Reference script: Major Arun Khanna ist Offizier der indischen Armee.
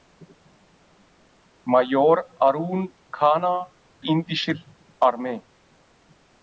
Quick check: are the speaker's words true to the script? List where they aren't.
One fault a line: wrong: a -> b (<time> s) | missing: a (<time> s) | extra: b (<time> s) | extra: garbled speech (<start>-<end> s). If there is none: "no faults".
missing: ist Offizier der (3.7 s)